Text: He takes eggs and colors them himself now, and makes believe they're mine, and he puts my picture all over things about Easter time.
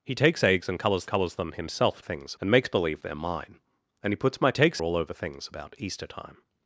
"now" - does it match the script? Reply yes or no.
no